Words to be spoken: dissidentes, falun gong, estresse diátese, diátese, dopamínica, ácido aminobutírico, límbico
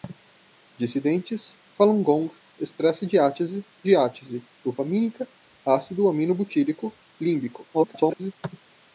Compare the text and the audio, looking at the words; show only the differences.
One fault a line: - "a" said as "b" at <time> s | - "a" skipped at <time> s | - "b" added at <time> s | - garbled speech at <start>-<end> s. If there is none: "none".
- garbled speech at 7.7-8.3 s